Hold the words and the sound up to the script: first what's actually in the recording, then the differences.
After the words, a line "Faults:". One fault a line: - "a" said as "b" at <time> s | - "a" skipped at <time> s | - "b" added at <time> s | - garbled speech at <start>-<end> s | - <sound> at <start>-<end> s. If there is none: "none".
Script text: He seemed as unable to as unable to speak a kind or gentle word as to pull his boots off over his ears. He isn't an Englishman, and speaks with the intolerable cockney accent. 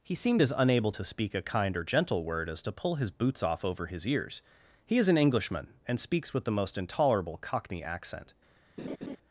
He seemed as unable to speak a kind or gentle word as to pull his boots off over his ears. He is an Englishman, and speaks with the most intolerable cockney accent.
Faults:
- "as unable to" skipped at 1.0 s
- "isn't" said as "is" at 5.0 s
- "most" added at 6.5 s
- laugh at 8.8-9.2 s